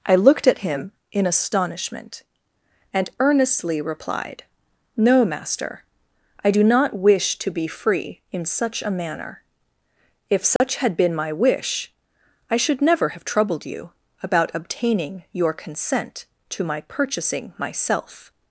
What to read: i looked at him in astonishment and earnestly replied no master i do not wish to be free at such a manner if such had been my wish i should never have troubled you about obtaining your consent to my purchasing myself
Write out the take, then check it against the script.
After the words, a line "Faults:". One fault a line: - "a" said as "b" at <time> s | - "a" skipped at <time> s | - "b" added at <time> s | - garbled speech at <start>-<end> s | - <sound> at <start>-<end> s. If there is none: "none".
i looked at him in astonishment and earnestly replied no master i do not wish to be free in such a manner if such had been my wish i should never have troubled you about obtaining your consent to my purchasing myself
Faults:
- "at" said as "in" at 8.3 s
- dropout at 10.6-10.6 s